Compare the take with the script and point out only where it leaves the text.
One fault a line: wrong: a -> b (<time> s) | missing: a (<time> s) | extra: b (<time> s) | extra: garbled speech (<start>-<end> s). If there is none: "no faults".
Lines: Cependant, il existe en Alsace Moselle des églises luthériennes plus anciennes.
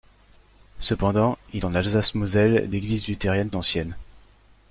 missing: existe (1.6 s)
missing: des (2.7 s)
missing: plus (3.5 s)